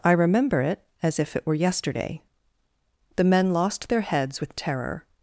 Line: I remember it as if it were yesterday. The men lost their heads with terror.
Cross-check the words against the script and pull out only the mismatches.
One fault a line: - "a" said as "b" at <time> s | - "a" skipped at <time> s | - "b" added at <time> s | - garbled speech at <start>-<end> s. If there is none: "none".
none